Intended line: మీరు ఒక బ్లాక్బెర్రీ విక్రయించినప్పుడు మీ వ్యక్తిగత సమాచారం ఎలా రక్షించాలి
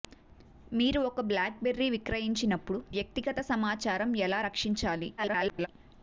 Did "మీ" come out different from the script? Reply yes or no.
yes